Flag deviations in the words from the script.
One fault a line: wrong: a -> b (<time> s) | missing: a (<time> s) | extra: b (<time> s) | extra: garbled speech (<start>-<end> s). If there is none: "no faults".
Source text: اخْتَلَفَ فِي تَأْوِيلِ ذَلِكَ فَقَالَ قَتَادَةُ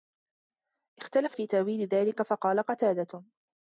no faults